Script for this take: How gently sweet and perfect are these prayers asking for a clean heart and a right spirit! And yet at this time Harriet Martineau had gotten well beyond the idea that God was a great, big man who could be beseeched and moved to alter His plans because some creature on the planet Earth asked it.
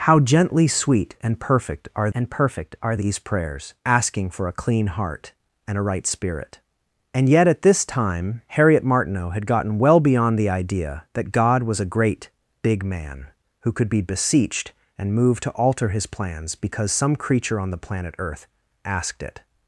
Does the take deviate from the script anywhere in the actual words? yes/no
yes